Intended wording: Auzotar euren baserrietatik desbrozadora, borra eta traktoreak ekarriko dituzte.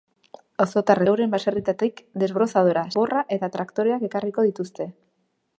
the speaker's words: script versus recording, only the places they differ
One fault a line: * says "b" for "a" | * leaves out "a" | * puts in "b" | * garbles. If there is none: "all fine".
all fine